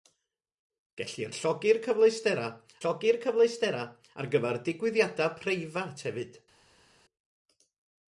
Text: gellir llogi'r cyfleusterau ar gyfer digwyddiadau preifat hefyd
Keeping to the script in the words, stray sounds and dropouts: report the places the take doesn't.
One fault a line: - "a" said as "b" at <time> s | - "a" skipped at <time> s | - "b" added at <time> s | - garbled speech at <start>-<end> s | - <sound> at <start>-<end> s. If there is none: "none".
- "llogi'r cyfleusterau" added at 2.8 s